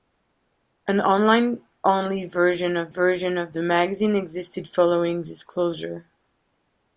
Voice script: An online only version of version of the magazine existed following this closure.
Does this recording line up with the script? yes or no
yes